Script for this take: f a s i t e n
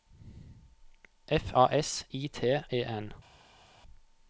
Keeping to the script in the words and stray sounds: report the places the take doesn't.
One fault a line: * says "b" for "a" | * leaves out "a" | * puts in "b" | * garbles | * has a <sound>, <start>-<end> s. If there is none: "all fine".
all fine